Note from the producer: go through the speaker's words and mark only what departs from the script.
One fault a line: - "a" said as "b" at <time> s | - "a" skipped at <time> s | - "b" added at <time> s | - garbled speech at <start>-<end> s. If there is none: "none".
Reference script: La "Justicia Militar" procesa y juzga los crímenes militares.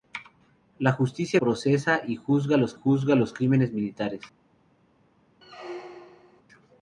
- "Militar" skipped at 1.4 s
- "juzga los" added at 2.7 s